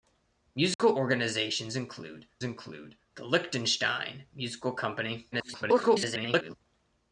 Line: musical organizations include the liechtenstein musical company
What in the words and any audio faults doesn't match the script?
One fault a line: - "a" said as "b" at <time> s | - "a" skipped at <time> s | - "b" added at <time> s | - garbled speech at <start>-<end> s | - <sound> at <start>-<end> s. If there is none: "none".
- dropout at 0.7-0.8 s
- "include" added at 2.4 s
- garbled speech at 5.3-6.6 s